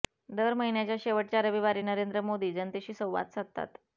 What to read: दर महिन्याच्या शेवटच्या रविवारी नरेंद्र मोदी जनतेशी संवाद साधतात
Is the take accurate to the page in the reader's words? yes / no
yes